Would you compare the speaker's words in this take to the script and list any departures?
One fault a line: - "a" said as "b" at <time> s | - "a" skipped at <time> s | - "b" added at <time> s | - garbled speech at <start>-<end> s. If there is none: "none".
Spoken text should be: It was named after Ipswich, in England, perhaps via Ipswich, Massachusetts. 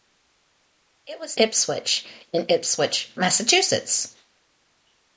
- "named after" skipped at 1.4 s
- "England perhaps via" skipped at 2.5 s